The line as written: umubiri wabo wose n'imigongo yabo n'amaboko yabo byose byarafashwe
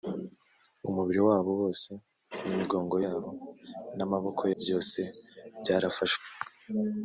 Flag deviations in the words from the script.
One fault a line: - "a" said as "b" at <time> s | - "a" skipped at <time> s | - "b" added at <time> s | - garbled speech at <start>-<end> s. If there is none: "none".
- "yabo" skipped at 4.4 s